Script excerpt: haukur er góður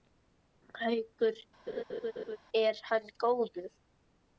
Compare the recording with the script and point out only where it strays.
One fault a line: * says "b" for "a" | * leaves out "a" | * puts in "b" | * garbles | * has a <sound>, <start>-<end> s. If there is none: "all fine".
* has a laugh, 1.7-2.4 s
* puts in "hann"